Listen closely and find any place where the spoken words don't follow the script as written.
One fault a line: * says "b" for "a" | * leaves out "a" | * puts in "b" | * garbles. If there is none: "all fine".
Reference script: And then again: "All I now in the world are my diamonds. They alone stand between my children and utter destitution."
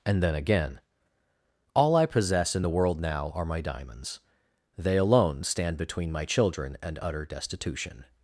* says "possess" for "now"
* puts in "now"